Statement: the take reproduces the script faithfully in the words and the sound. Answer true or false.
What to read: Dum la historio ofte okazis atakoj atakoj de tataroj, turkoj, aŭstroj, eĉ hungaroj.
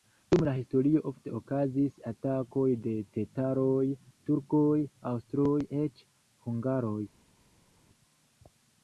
false